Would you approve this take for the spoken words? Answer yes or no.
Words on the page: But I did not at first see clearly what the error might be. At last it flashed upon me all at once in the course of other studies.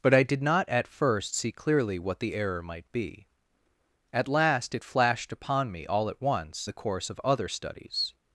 no